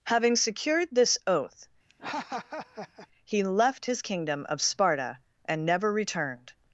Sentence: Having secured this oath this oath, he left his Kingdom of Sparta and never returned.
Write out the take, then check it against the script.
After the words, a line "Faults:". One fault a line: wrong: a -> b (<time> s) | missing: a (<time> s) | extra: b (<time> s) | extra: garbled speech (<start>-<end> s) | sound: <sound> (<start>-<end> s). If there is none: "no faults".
Having secured this oath, he left his Kingdom of Sparta and never returned.
Faults:
missing: this oath (1.7 s)
sound: laugh (1.9-3.1 s)